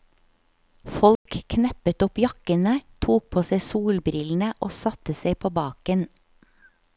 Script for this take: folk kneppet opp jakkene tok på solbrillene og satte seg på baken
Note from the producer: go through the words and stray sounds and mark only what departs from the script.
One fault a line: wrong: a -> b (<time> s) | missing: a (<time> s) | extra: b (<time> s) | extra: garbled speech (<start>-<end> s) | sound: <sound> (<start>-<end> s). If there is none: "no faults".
sound: dropout (1.2-1.3 s)
extra: seg (3.5 s)